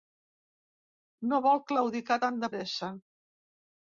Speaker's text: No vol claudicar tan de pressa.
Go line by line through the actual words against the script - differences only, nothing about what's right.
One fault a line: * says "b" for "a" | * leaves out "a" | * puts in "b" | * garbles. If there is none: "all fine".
all fine